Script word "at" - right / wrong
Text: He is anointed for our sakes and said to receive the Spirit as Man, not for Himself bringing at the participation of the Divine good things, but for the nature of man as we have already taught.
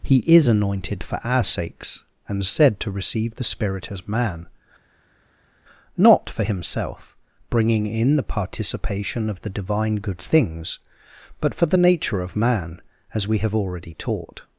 wrong